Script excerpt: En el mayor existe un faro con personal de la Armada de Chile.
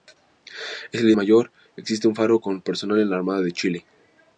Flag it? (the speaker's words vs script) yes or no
no